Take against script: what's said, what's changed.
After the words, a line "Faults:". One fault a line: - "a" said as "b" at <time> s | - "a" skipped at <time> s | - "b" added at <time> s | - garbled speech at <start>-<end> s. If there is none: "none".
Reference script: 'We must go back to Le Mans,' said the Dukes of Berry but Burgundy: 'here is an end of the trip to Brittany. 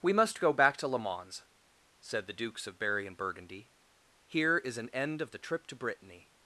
'We must go back to Le Mans,' said the Dukes of Berry and Burgundy: 'here is an end of the trip to Brittany.
Faults:
- "but" said as "and" at 3.0 s